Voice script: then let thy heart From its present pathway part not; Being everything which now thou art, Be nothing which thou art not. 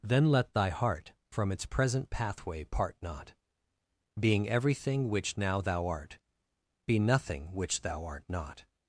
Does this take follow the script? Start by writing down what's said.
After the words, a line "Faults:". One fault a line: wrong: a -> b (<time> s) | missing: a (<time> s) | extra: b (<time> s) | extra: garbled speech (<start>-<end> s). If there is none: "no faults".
then let thy heart From its present pathway part not; Being everything which now thou art, Be nothing which thou art not.
Faults:
no faults